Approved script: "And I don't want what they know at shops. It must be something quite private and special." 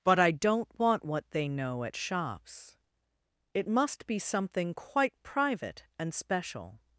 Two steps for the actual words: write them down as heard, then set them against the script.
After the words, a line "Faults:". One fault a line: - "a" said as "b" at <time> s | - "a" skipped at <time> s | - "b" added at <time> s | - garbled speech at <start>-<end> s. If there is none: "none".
"But I don't want what they know at shops. It must be something quite private and special."
Faults:
- "And" said as "But" at 0.0 s